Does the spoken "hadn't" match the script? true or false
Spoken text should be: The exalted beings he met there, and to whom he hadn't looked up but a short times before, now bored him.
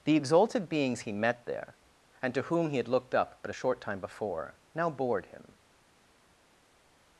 false